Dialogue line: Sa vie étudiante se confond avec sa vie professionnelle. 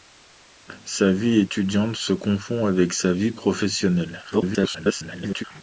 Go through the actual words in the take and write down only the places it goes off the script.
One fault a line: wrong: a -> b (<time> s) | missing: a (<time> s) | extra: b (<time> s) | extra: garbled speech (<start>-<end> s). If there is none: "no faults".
extra: garbled speech (4.3-5.4 s)